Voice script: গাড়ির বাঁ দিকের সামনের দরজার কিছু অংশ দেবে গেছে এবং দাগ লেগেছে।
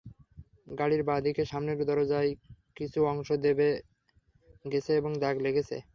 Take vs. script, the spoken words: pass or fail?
pass